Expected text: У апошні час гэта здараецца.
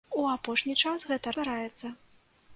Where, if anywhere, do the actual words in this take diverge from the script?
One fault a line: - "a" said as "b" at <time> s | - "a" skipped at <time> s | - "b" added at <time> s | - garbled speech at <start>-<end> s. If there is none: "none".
none